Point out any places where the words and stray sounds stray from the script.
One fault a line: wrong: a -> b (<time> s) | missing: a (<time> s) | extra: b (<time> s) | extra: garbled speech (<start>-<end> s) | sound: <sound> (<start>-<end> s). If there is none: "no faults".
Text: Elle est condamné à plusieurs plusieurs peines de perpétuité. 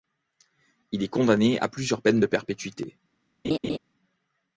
wrong: Elle -> Il (0.9 s)
missing: plusieurs (2.0 s)
sound: laugh (3.4-3.8 s)